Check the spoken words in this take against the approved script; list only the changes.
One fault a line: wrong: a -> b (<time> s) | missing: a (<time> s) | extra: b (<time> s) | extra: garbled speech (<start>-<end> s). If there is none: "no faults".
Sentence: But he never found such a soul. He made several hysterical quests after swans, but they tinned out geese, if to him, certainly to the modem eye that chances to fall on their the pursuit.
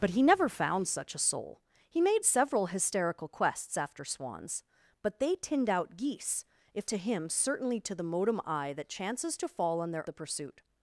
no faults